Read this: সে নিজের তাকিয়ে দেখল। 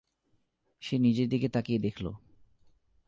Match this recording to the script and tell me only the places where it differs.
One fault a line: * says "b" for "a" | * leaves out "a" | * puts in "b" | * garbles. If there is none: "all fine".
* puts in "দিকে"